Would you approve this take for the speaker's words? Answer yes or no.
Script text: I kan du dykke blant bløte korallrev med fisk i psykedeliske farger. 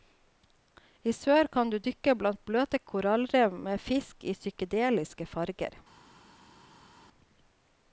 no